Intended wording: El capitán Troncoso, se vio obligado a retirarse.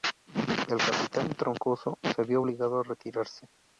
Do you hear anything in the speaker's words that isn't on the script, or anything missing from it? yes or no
no